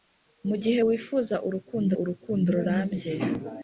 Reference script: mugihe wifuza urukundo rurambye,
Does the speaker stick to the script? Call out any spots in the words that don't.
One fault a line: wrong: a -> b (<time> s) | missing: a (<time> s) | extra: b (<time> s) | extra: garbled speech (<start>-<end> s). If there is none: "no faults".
extra: urukundo (2.0 s)